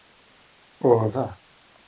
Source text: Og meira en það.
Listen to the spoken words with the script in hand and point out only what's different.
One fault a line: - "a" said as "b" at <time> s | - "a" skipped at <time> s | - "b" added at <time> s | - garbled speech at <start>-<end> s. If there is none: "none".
- "meira" skipped at 1.1 s